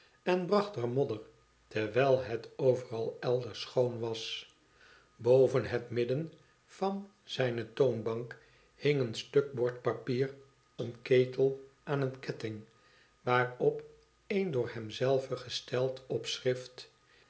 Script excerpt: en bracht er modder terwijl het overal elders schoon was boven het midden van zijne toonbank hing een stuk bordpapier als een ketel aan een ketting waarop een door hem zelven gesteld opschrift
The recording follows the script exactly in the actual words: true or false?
false